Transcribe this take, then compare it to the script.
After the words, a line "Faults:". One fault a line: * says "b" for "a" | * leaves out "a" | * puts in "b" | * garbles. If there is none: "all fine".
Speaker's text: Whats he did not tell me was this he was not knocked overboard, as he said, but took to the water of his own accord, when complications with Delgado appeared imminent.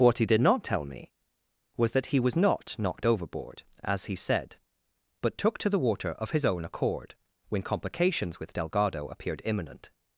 What he did not tell me was that he was not knocked overboard, as he said, but took to the water of his own accord, when complications with Delgado appeared imminent.
Faults:
* says "What" for "Whats"
* says "that" for "this"